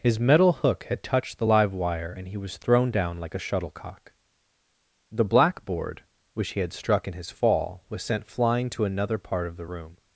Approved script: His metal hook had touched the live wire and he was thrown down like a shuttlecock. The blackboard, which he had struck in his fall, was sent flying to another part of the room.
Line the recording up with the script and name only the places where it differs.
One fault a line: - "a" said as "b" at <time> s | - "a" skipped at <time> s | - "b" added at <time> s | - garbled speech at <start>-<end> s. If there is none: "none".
none